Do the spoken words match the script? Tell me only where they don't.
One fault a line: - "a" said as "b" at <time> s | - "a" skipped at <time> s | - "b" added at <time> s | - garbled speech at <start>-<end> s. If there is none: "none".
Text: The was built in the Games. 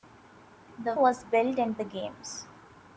none